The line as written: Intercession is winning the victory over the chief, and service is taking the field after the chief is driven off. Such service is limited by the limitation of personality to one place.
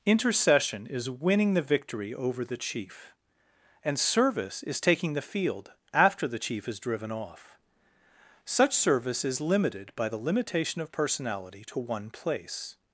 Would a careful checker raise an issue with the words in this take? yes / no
no